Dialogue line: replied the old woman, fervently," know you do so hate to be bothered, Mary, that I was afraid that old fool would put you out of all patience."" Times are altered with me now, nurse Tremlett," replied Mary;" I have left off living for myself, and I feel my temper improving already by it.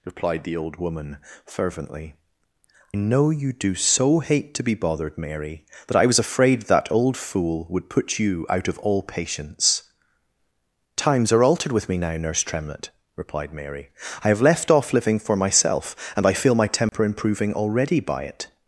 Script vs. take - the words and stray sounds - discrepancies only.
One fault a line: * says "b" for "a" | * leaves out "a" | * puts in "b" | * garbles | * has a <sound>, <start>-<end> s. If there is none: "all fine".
* has a dropout, 16.9-16.9 s